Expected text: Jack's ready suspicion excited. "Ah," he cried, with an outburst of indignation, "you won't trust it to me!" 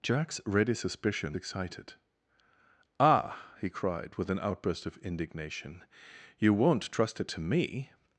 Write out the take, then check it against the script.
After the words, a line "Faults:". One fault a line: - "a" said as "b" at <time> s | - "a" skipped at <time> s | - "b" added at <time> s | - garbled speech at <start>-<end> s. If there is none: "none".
Jack's ready suspicion excited. "Ah," he cried, with an outburst of indignation, "you won't trust it to me!"
Faults:
none